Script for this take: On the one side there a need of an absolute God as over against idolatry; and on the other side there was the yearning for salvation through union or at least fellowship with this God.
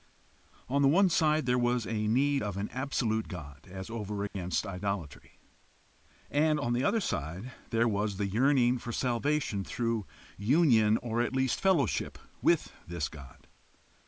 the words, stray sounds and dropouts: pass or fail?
fail